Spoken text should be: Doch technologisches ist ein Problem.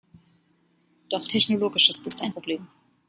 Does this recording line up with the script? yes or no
yes